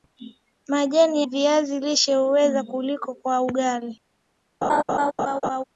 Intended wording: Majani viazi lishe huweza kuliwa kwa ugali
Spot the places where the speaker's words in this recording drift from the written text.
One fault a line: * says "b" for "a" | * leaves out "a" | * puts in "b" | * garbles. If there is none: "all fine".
all fine